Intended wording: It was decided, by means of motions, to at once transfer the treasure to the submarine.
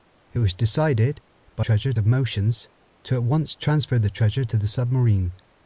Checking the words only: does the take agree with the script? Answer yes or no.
no